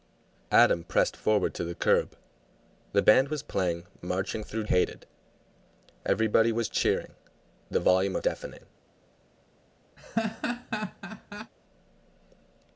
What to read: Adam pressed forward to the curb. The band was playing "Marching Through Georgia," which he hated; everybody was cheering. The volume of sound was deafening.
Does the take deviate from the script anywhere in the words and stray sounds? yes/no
yes